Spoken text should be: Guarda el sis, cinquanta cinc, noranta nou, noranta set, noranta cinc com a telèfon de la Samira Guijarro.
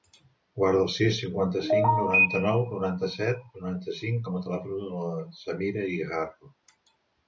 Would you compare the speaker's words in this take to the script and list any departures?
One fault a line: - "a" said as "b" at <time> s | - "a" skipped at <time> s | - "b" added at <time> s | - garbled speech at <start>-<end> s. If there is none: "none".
none